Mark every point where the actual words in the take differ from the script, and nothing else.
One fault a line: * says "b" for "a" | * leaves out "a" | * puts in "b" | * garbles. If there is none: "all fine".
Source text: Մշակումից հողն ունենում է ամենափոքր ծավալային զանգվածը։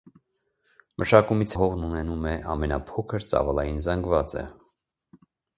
all fine